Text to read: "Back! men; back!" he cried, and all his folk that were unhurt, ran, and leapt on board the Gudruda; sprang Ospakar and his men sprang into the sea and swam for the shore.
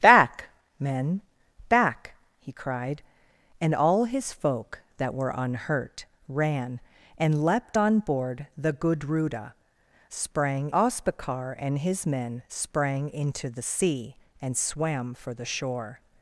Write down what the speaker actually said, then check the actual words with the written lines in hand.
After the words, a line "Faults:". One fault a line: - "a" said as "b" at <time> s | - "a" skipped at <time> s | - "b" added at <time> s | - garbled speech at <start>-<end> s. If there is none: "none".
"Back! men; back!" he cried, and all his folk that were unhurt, ran, and leapt on board the Gudruda; sprang Ospakar and his men sprang into the sea and swam for the shore.
Faults:
none